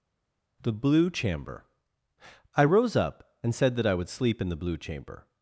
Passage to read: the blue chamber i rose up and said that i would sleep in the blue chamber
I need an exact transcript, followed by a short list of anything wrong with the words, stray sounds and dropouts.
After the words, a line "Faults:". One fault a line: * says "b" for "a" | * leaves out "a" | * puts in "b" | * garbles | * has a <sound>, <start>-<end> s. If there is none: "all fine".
the blue chamber i rose up and said that i would sleep in the blue chamber
Faults:
all fine